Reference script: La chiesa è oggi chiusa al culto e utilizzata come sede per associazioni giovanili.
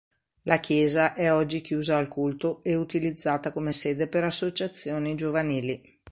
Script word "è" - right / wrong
right